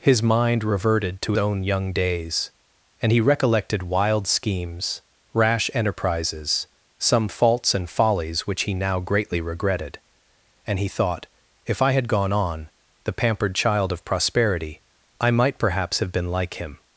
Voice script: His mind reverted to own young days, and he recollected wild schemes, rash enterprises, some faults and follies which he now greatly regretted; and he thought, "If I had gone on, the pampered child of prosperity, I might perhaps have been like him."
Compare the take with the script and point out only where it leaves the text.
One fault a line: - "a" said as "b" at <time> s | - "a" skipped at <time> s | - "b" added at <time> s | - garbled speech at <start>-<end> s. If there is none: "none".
none